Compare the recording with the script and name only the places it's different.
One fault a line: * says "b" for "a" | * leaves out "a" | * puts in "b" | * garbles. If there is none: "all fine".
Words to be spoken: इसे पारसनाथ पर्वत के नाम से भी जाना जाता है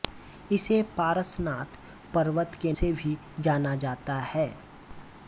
* leaves out "नाम"